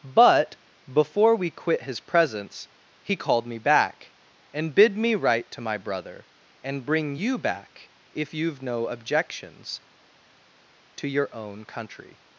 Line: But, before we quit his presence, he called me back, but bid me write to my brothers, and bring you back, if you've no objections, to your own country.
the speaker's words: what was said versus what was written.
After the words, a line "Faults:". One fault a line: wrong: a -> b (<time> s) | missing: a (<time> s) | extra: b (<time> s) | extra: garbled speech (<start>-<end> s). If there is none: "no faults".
But, before we quit his presence, he called me back, and bid me write to my brother, and bring you back, if you've no objections, to your own country.
Faults:
wrong: but -> and (4.5 s)
wrong: brothers -> brother (5.8 s)